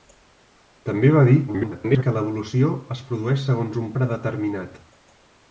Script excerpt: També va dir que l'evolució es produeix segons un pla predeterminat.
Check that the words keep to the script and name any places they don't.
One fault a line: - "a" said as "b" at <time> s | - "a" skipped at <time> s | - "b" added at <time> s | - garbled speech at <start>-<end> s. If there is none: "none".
- garbled speech at 1.5-2.0 s
- "pla" skipped at 3.9 s